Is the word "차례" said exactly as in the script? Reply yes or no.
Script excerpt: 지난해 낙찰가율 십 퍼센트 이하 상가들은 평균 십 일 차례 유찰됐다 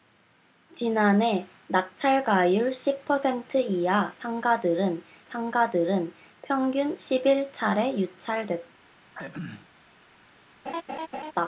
yes